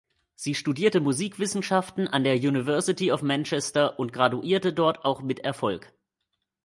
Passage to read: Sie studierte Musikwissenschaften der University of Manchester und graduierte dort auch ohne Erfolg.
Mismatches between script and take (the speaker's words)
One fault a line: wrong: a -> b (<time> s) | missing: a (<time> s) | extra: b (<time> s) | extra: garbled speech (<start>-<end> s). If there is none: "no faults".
extra: an (2.1 s)
wrong: ohne -> mit (5.2 s)